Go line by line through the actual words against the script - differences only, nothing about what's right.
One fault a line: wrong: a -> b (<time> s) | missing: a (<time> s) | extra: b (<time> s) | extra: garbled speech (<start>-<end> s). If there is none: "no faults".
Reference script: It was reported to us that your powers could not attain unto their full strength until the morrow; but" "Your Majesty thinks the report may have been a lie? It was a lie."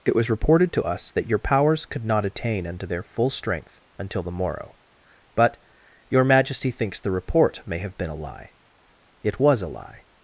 no faults